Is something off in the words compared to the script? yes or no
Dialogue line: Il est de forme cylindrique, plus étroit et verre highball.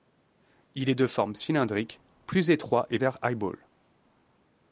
no